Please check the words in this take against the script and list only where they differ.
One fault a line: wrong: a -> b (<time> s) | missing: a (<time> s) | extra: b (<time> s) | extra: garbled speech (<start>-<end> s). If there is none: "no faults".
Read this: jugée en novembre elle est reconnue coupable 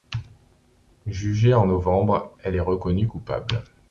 no faults